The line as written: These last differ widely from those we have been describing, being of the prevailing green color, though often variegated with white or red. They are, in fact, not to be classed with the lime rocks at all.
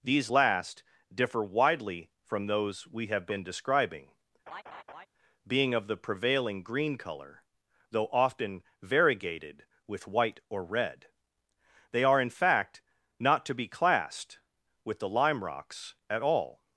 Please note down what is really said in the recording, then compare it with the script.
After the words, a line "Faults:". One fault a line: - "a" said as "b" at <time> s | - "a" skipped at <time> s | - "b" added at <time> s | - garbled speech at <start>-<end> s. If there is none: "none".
These last differ widely from those we have been describing, being of the prevailing green color, though often variegated with white or red. They are, in fact, not to be classed with the lime rocks at all.
Faults:
none